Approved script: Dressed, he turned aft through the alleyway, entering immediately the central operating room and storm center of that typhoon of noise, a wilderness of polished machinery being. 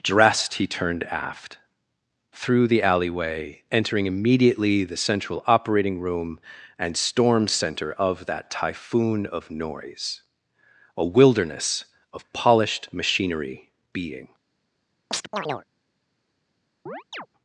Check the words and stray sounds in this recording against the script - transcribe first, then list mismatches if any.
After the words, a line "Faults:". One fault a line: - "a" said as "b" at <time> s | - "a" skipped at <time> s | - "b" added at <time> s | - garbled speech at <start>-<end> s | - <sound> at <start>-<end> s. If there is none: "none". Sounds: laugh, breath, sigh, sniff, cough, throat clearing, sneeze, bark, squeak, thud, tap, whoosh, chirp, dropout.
Dressed, he turned aft through the alleyway, entering immediately the central operating room and storm center of that typhoon of noise, a wilderness of polished machinery being.
Faults:
- chirp at 15.1-15.7 s
- chirp at 16.9-17.3 s